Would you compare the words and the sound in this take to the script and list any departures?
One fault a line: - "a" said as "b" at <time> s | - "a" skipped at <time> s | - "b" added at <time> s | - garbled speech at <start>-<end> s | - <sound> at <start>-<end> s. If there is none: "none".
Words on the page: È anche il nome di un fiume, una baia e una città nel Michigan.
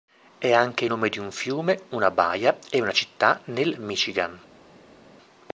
- "il" skipped at 0.8 s